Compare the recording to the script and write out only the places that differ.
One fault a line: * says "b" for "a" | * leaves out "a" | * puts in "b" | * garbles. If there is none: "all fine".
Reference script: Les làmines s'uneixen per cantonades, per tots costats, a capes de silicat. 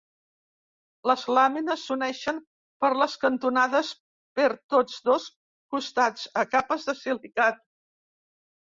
* puts in "les"
* puts in "dos"